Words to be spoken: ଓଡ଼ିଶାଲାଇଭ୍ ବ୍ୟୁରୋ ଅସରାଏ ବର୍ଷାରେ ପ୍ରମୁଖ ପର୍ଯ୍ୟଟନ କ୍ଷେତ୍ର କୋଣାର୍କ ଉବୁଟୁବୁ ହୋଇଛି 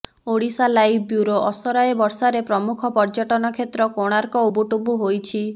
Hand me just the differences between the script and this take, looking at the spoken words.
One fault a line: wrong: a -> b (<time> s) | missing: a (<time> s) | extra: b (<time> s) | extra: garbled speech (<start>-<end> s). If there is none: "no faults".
no faults